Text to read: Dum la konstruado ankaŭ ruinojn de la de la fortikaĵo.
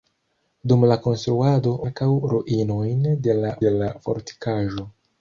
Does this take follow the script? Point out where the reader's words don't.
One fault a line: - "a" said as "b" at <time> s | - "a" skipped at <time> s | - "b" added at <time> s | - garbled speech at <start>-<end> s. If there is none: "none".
none